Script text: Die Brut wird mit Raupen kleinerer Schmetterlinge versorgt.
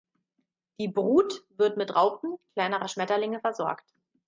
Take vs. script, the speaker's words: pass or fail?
pass